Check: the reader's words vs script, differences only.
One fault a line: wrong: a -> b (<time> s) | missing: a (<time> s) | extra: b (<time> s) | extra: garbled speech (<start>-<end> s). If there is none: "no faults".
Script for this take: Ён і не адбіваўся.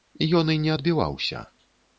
no faults